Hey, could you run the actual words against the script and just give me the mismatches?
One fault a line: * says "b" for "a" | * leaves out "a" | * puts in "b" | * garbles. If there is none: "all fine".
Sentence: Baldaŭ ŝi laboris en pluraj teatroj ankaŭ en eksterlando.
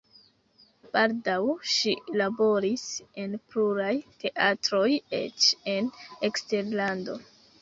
* says "eĉ" for "ankaŭ"